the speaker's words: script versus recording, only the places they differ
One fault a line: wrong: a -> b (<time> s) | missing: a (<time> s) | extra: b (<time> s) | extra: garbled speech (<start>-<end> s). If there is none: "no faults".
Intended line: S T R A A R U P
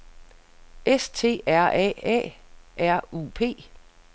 no faults